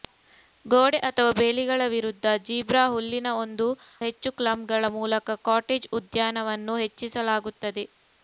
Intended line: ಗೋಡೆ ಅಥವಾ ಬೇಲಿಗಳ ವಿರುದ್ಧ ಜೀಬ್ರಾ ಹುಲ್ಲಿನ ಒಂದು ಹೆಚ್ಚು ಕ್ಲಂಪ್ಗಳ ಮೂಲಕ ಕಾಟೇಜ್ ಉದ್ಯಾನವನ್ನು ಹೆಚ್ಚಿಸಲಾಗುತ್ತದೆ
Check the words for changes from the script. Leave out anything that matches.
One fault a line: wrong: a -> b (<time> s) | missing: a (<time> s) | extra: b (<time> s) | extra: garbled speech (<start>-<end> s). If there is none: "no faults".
no faults